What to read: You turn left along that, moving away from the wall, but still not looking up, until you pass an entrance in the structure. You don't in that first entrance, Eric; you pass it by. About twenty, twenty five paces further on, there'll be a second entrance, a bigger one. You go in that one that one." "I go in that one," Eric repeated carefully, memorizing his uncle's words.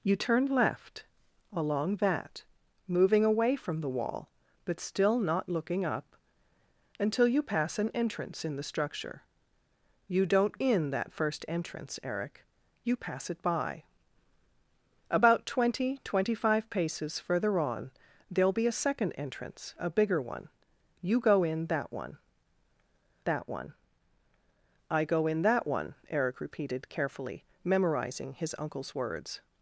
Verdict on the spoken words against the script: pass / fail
pass